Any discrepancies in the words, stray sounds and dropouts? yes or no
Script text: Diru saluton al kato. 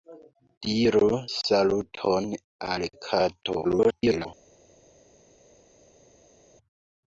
yes